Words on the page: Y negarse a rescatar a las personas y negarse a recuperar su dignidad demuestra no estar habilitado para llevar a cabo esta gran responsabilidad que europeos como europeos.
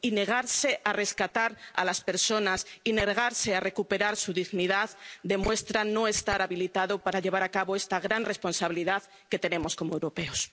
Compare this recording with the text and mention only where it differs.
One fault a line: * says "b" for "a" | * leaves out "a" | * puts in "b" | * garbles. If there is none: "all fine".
* says "tenemos" for "europeos"